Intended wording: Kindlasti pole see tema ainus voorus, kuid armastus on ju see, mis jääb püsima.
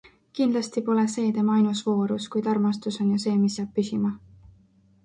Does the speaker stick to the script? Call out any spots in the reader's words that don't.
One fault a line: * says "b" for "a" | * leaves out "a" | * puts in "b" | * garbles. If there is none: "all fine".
all fine